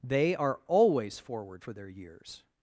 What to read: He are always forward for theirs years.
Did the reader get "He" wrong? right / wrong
wrong